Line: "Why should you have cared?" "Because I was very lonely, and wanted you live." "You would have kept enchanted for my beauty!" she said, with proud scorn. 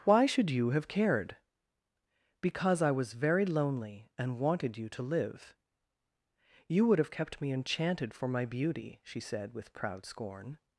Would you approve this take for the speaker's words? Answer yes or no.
no